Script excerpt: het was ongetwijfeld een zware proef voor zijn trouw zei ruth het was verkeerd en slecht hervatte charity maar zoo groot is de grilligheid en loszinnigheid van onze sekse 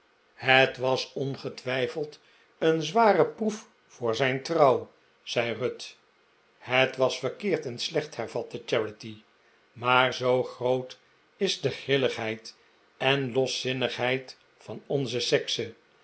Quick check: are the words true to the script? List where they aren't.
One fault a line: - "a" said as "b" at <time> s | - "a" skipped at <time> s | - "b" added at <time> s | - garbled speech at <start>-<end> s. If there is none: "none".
none